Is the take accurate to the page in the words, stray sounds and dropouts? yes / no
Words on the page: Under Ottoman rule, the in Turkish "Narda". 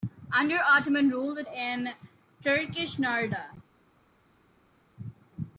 yes